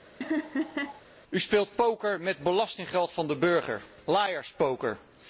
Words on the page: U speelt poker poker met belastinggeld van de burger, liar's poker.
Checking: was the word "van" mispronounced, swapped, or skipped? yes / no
no